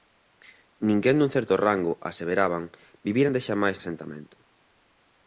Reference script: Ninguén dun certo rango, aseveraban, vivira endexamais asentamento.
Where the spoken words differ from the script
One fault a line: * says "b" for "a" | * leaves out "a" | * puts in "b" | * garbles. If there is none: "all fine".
all fine